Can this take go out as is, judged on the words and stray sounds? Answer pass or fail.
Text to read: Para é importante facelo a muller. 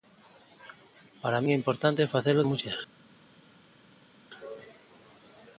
pass